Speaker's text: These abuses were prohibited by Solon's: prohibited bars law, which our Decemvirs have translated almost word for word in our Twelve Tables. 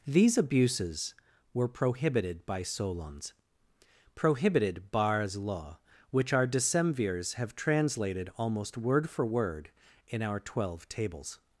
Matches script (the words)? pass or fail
pass